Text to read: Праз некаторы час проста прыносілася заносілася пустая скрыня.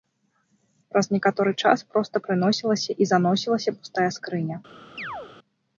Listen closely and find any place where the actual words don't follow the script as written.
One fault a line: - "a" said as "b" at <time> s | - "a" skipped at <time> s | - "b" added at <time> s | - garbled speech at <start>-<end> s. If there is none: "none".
- "і" added at 3.0 s